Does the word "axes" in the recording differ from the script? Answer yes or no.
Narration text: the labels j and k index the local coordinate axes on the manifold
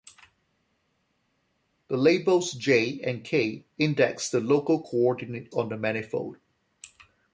yes